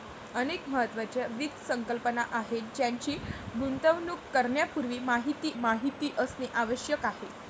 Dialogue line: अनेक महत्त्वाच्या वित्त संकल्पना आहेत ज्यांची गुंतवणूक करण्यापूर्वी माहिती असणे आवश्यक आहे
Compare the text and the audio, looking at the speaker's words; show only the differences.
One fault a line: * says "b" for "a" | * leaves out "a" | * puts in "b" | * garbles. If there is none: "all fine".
* puts in "माहिती"